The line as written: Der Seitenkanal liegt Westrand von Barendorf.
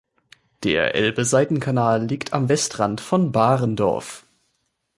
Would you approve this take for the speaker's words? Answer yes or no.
no